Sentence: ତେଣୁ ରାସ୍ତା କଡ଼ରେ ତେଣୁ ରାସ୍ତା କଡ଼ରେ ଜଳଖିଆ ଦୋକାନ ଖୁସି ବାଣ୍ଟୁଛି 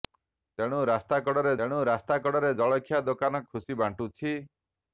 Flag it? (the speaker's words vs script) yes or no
no